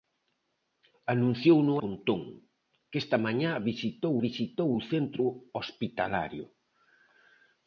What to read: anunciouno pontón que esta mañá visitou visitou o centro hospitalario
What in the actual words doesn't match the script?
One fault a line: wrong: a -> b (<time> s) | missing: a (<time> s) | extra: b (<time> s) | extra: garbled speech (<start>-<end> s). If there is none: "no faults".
no faults